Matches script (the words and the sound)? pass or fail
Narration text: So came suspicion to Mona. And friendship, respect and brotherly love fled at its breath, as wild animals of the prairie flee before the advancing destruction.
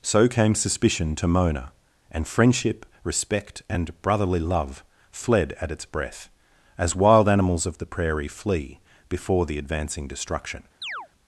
fail